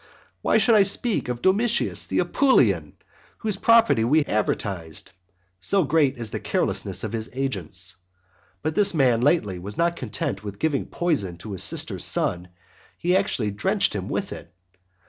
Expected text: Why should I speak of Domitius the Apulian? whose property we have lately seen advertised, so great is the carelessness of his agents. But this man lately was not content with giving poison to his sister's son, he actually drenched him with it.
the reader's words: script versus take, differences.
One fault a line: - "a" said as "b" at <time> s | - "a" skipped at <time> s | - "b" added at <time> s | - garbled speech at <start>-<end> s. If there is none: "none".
- "have lately seen" skipped at 4.2 s